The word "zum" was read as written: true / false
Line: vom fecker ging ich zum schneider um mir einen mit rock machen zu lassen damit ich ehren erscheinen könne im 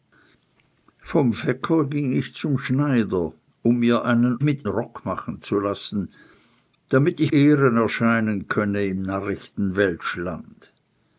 true